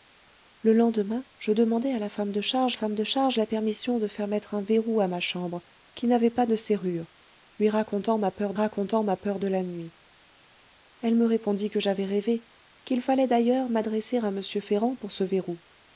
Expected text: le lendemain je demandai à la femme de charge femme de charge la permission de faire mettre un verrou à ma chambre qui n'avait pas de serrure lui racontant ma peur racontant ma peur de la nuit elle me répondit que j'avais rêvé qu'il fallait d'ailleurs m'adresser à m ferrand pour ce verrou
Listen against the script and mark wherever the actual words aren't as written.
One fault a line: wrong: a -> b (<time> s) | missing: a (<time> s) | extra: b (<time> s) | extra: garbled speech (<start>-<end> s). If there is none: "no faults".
no faults